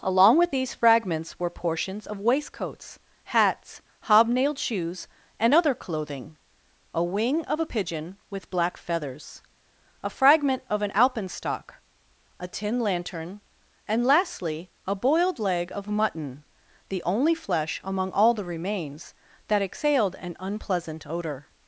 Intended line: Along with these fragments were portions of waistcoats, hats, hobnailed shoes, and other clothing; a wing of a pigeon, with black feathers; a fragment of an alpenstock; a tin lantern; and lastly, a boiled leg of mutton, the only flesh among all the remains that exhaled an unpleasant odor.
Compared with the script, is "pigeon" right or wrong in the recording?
right